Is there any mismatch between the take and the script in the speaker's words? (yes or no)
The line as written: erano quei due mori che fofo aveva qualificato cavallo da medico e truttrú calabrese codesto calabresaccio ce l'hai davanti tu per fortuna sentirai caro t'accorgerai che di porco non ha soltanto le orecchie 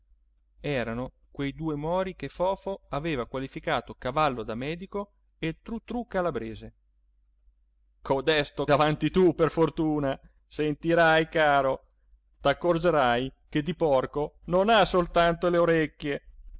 yes